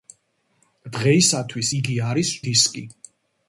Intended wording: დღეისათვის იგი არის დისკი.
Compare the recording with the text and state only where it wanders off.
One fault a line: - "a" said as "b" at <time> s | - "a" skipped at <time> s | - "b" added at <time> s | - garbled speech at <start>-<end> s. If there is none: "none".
none